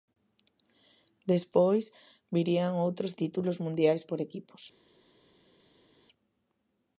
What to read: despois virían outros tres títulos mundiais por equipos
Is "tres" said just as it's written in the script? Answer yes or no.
no